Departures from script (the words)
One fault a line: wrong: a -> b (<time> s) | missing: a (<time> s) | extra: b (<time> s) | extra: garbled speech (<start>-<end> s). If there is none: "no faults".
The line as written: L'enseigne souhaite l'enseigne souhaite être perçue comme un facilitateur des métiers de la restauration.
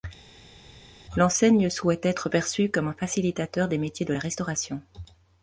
missing: l'enseigne souhaite (2.1 s)